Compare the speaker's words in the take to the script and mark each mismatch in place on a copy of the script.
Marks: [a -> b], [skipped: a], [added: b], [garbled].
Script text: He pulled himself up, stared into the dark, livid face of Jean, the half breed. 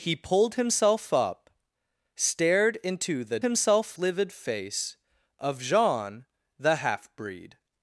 He pulled himself up, stared into the [dark, -> himself] livid face of Jean, the half breed.